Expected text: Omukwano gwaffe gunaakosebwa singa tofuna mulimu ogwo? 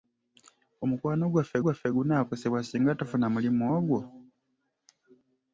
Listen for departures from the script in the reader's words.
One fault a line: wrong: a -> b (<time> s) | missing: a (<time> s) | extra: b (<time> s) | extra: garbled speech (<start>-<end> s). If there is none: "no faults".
extra: gwaffe (1.6 s)